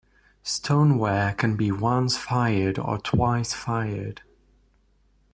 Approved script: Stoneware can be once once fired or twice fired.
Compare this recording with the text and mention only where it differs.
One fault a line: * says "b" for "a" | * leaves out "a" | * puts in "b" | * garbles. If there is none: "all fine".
* leaves out "once"